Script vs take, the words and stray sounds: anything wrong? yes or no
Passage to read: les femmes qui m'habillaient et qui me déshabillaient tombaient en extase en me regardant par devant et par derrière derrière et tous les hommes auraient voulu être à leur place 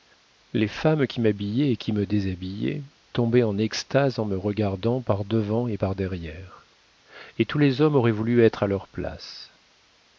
yes